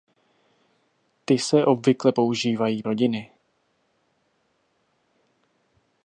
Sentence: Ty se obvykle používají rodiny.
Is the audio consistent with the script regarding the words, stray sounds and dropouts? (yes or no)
yes